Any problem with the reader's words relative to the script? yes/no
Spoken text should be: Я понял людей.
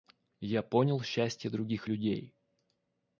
yes